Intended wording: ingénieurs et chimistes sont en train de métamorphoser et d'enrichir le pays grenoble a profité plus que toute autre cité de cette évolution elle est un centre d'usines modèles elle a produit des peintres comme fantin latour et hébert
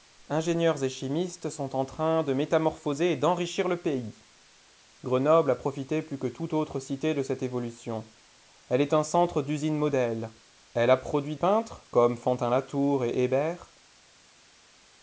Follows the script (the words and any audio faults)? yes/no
no